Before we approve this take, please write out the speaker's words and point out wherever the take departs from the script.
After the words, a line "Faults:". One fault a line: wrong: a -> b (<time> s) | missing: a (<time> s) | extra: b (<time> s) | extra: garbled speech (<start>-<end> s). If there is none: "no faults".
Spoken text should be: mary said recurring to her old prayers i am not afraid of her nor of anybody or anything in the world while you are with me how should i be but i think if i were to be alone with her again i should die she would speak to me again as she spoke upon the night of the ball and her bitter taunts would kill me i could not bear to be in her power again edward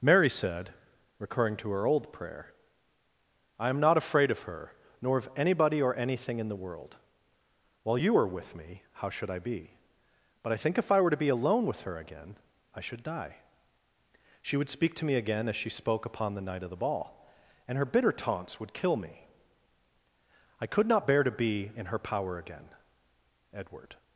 mary said recurring to her old prayer i am not afraid of her nor of anybody or anything in the world while you are with me how should i be but i think if i were to be alone with her again i should die she would speak to me again as she spoke upon the night of the ball and her bitter taunts would kill me i could not bear to be in her power again edward
Faults:
wrong: prayers -> prayer (2.1 s)